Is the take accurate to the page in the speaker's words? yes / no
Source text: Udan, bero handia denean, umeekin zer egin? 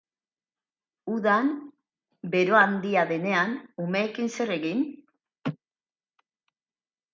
yes